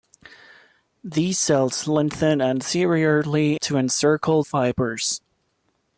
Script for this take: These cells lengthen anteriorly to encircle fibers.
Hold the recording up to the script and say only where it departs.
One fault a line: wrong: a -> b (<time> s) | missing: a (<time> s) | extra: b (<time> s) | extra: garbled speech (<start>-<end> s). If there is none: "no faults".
no faults